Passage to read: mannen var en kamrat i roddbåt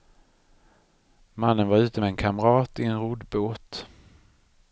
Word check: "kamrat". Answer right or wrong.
right